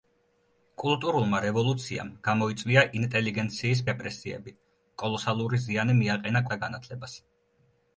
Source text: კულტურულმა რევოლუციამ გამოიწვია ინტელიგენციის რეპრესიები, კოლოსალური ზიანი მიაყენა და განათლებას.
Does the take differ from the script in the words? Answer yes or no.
no